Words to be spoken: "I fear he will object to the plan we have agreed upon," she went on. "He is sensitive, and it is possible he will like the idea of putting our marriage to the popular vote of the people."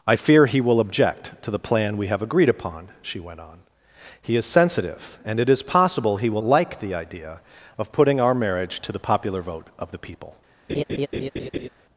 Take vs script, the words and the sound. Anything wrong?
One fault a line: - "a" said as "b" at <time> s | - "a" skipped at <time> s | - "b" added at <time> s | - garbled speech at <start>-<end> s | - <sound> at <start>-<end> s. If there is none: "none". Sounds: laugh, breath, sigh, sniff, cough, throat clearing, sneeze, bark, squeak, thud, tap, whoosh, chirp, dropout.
- laugh at 10.7-11.7 s